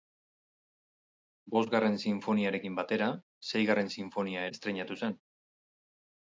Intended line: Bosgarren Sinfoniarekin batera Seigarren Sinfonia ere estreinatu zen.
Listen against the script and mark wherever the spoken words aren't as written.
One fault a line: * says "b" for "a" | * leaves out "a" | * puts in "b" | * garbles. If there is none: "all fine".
* leaves out "ere"